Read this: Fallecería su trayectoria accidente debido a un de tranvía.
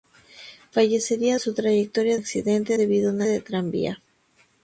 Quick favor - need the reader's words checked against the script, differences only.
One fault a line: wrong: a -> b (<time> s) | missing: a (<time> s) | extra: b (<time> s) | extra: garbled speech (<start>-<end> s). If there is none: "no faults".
no faults